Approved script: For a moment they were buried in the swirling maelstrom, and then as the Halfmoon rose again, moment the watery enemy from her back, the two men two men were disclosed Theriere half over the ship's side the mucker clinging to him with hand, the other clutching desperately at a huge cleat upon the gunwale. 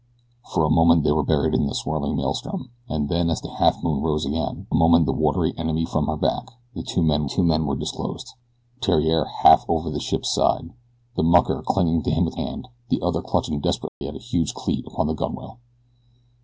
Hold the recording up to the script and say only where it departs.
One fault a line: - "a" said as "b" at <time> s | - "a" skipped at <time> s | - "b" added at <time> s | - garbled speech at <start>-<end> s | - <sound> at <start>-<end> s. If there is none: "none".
- dropout at 13.9-14.0 s